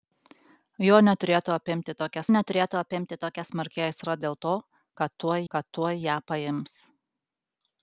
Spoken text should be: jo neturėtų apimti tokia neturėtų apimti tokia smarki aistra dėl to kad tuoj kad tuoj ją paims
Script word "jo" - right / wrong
right